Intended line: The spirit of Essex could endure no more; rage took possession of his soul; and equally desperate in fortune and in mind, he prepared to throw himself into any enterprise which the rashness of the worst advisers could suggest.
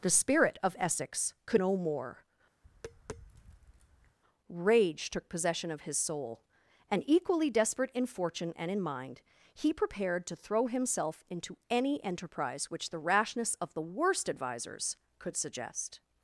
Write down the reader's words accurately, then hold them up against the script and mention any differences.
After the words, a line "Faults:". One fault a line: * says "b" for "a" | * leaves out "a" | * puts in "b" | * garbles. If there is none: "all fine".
The spirit of Essex could no more; rage took possession of his soul; and equally desperate in fortune and in mind, he prepared to throw himself into any enterprise which the rashness of the worst advisers could suggest.
Faults:
* leaves out "endure"